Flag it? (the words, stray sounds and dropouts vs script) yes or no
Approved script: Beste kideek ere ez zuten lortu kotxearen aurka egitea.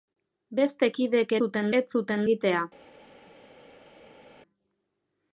yes